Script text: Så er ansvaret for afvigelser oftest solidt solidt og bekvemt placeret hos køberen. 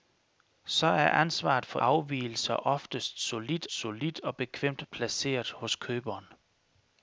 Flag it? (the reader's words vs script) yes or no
no